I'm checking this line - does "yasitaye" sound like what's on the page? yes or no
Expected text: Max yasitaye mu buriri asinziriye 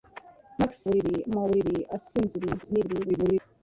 no